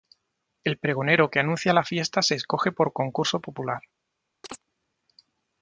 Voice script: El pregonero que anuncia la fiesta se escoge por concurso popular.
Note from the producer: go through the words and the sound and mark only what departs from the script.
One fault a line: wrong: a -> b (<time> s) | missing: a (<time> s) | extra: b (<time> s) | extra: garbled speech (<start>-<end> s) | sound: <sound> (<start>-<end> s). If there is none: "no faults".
sound: chirp (4.4-4.6 s)